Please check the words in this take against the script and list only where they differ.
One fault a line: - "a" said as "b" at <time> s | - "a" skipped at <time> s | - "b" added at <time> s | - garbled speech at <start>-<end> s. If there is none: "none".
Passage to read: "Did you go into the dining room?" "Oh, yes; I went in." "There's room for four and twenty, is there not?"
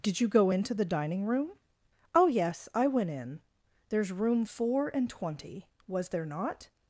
- "for" skipped at 4.4 s
- "is" said as "was" at 5.9 s